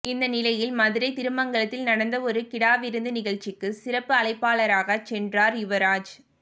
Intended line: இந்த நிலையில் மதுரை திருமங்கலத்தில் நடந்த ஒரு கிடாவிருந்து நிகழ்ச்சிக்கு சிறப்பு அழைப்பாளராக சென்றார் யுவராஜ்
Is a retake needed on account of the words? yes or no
no